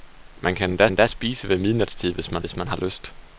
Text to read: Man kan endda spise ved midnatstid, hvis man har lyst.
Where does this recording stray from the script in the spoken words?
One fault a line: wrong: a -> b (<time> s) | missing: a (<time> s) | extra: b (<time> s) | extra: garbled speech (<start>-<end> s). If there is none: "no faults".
extra: endda (0.9 s)
extra: hvis man (2.4 s)